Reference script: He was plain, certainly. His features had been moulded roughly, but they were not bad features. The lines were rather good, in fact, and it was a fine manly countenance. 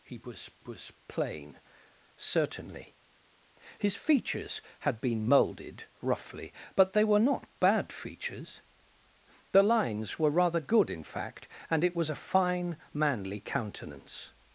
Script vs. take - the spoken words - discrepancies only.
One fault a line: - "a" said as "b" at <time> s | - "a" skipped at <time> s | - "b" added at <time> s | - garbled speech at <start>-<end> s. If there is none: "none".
- "was" added at 0.6 s